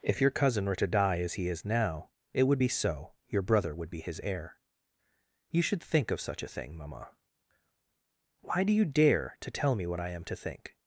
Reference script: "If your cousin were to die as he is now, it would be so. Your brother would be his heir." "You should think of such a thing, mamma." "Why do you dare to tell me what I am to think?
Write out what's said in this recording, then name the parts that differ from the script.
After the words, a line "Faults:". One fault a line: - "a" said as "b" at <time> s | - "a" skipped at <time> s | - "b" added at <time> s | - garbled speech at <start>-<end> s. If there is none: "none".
"If your cousin were to die as he is now, it would be so. Your brother would be his heir." "You should think of such a thing, mamma." "Why do you dare to tell me what I am to think?
Faults:
none